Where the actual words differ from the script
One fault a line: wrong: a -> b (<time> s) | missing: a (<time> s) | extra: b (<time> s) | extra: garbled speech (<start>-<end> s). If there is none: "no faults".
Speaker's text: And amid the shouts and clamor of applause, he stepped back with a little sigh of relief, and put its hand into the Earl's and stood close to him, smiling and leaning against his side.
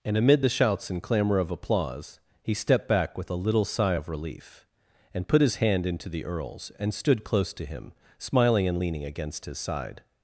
wrong: its -> his (5.4 s)